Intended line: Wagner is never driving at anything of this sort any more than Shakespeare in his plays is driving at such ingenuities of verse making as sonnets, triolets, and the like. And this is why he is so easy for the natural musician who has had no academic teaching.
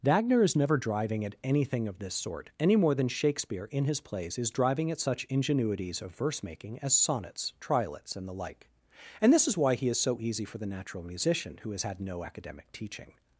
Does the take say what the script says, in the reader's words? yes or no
yes